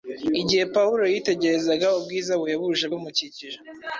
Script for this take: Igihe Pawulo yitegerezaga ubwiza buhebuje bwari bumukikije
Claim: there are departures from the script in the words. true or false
true